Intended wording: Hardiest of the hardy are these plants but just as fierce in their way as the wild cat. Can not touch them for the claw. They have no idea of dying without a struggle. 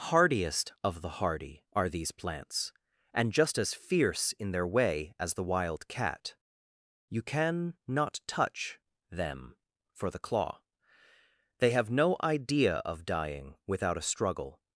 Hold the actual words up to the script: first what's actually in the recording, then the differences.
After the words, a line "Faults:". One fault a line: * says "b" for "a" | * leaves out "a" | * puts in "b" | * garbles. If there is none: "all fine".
Hardiest of the hardy are these plants and just as fierce in their way as the wild cat. You can not touch them for the claw. They have no idea of dying without a struggle.
Faults:
* says "and" for "but"
* puts in "You"